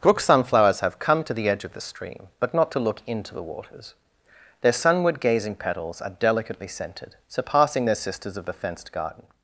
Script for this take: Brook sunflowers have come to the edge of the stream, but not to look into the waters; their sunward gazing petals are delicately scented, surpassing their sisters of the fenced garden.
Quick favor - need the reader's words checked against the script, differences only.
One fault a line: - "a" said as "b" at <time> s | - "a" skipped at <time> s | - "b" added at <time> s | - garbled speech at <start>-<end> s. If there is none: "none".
none